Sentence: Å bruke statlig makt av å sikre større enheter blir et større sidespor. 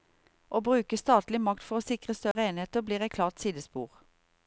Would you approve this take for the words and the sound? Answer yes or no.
no